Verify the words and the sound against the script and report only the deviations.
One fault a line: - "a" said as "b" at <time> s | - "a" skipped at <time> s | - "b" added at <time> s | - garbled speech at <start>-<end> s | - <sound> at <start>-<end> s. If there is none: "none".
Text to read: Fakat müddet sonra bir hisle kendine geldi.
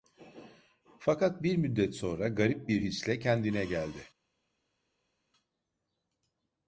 - "bir" added at 1.4 s
- "garip" added at 2.3 s